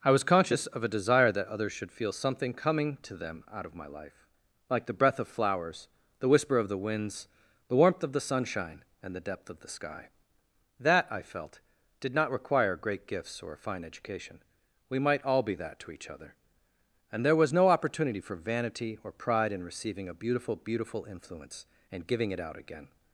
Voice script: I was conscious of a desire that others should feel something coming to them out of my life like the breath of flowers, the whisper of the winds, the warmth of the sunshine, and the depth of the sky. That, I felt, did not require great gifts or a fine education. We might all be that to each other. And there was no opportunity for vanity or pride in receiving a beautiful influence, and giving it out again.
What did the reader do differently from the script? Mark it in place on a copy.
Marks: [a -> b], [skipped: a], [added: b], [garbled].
I was conscious of a desire that others should feel something coming to them out of my life like the breath of flowers, the whisper of the winds, the warmth of the sunshine, and the depth of the sky. That, I felt, did not require great gifts or a fine education. We might all be that to each other. And there was no opportunity for vanity or pride in receiving a beautiful [added: beautiful] influence, and giving it out again.